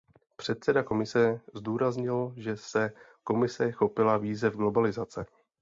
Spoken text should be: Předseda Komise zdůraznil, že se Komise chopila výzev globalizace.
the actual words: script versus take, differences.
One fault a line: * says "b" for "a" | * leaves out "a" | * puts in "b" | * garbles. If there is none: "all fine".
all fine